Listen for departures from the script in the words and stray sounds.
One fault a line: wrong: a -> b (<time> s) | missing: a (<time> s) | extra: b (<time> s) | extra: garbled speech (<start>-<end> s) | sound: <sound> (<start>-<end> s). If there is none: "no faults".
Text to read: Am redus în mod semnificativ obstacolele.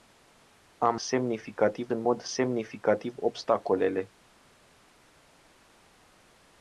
wrong: redus -> semnificativ (0.9 s)